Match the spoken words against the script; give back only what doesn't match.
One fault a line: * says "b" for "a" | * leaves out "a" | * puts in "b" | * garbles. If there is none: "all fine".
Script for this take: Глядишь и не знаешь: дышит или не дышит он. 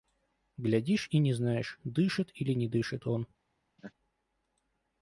all fine